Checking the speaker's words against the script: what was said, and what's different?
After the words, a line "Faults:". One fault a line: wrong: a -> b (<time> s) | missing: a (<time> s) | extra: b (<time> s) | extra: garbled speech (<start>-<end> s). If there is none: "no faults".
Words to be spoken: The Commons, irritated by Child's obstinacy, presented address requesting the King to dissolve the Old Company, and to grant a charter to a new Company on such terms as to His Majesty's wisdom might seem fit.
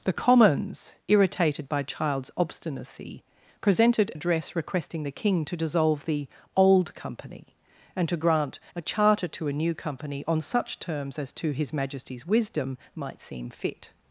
The Commons, irritated by Child's obstinacy, presented address requesting the King to dissolve the Old Company, and to grant a charter to a new Company on such terms as to His Majesty's wisdom might seem fit.
Faults:
no faults